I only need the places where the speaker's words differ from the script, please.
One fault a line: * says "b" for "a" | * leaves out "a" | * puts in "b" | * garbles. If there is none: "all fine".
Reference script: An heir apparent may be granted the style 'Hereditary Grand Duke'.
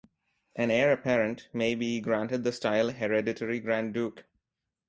all fine